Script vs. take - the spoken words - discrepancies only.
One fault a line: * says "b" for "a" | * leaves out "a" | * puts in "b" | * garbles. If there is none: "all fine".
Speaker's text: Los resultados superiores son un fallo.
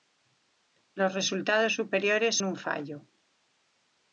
* leaves out "son"